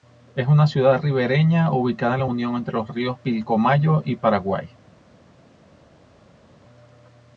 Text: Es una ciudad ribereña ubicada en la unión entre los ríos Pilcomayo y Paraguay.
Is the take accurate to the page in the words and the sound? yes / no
yes